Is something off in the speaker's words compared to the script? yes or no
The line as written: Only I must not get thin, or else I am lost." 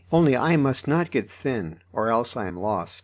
no